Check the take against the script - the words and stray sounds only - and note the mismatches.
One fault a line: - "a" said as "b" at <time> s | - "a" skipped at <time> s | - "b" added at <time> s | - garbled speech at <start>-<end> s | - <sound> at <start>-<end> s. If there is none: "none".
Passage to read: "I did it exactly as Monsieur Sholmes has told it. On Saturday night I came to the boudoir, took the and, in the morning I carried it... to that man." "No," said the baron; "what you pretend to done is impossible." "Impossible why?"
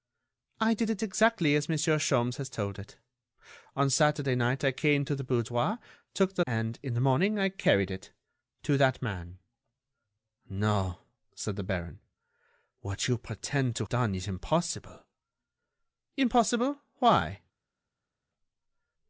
none